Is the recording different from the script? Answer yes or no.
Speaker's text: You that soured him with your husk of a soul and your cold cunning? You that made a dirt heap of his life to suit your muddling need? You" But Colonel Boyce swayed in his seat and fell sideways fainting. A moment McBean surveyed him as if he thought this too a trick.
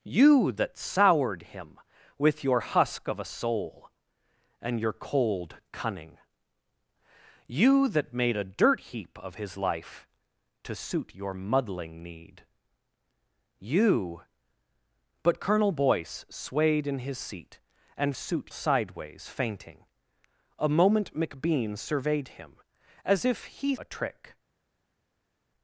yes